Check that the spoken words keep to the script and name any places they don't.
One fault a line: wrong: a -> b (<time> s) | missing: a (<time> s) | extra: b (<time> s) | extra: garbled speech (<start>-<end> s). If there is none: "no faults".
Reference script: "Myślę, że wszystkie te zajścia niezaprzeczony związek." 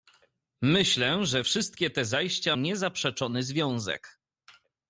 no faults